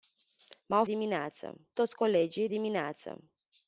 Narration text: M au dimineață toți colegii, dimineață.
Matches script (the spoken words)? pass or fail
pass